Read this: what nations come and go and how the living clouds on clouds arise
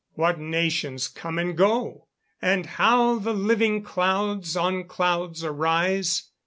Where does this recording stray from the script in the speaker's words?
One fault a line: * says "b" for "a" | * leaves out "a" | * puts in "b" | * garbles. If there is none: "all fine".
all fine